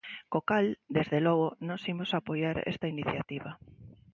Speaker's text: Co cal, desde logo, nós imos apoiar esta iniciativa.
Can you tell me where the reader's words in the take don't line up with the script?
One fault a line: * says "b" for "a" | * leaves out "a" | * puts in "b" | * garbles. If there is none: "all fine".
all fine